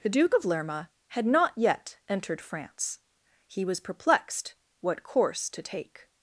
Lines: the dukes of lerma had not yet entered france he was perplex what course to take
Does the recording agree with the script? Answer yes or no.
no